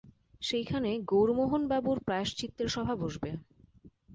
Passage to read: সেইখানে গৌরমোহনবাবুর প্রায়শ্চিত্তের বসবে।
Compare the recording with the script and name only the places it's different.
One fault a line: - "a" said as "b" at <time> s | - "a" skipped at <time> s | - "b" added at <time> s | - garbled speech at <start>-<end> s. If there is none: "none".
- "সভা" added at 2.7 s